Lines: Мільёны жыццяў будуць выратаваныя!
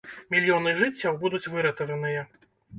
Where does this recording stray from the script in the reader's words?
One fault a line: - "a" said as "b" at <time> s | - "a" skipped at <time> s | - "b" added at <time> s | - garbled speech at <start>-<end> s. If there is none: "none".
none